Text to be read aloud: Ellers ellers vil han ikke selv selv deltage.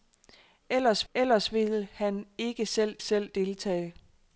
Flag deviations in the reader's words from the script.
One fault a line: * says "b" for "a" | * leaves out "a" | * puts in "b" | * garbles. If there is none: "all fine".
all fine